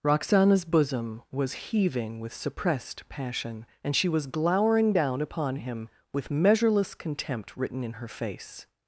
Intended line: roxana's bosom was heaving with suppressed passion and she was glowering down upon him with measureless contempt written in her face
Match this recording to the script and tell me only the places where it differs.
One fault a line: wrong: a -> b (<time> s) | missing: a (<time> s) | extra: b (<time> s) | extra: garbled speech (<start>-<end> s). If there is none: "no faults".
no faults